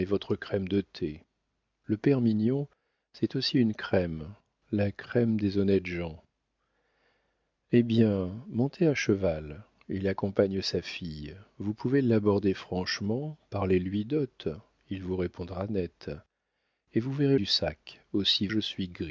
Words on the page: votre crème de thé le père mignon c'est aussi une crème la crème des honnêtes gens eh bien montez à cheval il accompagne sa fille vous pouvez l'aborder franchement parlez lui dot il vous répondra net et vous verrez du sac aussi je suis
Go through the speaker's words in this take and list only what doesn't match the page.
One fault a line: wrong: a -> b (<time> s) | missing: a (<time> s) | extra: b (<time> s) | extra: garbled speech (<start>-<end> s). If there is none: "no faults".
no faults